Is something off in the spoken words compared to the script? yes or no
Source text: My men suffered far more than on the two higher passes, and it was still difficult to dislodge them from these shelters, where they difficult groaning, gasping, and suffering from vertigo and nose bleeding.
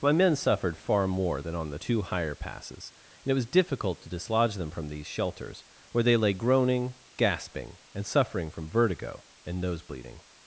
yes